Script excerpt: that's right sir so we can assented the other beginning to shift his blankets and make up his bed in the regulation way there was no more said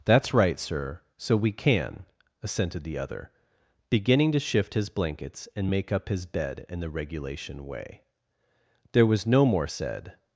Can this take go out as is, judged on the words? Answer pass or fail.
pass